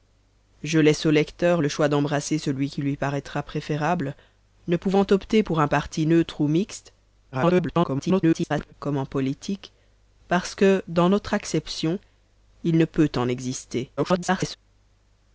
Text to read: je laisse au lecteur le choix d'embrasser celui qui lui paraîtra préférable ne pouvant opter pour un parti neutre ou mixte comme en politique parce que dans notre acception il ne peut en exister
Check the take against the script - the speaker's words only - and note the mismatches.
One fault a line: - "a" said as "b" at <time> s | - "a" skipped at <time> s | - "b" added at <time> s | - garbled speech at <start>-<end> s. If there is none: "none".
- garbled speech at 7.3-8.7 s
- garbled speech at 14.0-14.6 s